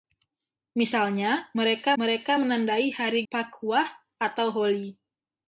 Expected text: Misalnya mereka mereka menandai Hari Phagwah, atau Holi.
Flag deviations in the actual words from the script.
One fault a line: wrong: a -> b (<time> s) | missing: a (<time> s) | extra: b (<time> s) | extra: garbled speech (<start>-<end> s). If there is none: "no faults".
no faults